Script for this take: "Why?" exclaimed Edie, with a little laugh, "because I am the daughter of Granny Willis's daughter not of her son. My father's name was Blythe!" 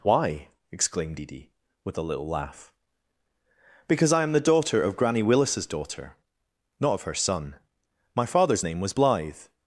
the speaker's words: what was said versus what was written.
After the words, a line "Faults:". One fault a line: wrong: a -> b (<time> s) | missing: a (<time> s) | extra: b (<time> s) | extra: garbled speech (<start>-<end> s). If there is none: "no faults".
"Why?" exclaimed Edie, with a little laugh, "because I am the daughter of Granny Willis's daughter not of her son. My father's name was Blythe!"
Faults:
no faults